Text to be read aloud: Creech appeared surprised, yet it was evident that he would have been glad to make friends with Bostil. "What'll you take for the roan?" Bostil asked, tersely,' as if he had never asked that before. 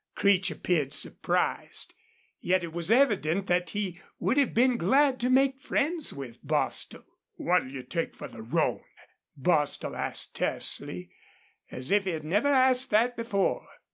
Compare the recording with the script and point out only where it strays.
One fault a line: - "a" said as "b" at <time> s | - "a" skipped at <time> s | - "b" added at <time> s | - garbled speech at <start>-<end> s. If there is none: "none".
none